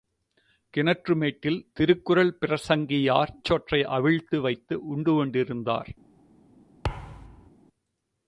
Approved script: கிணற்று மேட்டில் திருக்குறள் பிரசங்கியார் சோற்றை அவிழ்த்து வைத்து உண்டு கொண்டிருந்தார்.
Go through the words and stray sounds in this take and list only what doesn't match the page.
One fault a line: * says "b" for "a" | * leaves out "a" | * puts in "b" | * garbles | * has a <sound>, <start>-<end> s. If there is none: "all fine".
* has a thud, 6.8-7.5 s